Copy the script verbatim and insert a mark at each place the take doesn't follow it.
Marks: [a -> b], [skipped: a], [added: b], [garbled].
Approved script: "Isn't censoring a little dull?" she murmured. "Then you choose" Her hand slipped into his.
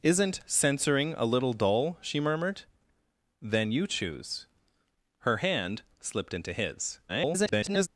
"Isn't censoring a little dull?" she murmured. "Then you choose" Her hand slipped into his. [garbled]